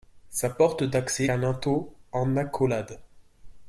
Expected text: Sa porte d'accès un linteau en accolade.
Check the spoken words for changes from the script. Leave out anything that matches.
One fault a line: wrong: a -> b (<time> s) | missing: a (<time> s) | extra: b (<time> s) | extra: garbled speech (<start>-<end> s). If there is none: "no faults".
no faults